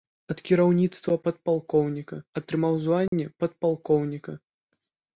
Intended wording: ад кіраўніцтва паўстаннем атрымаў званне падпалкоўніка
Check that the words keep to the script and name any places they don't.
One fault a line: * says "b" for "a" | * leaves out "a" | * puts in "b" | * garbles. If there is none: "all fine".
* says "падпалкоўніка" for "паўстаннем"